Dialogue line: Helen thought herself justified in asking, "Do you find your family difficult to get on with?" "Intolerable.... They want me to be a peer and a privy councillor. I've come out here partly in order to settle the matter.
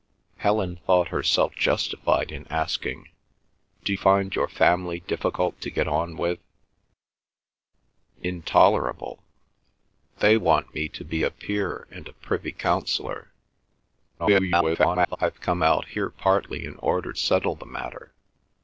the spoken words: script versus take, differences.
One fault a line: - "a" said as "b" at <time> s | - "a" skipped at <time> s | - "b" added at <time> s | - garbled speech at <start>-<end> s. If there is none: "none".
- "you" skipped at 3.9 s
- garbled speech at 14.2-15.2 s
- "to" skipped at 17.1 s